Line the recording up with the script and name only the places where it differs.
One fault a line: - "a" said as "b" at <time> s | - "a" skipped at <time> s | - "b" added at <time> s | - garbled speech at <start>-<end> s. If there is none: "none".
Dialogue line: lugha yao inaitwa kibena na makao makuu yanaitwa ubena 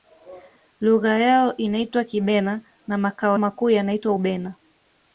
none